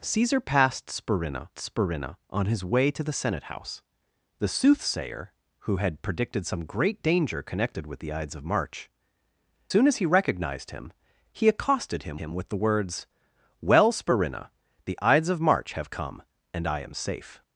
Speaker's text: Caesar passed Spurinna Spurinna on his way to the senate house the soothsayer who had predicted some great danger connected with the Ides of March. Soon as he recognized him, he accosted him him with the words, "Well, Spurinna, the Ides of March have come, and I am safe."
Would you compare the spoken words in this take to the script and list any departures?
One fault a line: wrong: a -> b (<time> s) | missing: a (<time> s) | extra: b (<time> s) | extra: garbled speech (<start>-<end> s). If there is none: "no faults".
no faults